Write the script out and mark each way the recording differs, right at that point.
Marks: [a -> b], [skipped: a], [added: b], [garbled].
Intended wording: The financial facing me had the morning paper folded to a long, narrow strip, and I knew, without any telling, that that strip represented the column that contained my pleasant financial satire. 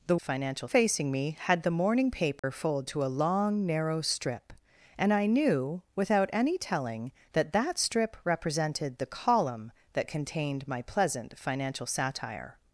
The financial facing me had the morning paper folded to a long, narrow strip, and I knew, without any telling, that that strip represented the column that contained my pleasant financial satire.